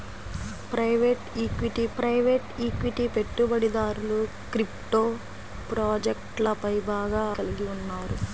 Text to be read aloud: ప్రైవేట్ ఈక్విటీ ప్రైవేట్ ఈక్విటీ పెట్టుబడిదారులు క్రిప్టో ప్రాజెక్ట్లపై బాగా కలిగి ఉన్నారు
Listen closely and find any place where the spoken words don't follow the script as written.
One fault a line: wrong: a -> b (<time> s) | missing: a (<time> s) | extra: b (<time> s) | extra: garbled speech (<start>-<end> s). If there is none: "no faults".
no faults